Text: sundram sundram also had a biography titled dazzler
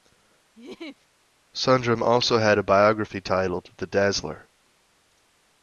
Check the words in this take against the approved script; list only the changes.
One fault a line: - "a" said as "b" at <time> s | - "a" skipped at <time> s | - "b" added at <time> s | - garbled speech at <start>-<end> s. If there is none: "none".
- "sundram" skipped at 2.0 s
- "the" added at 3.8 s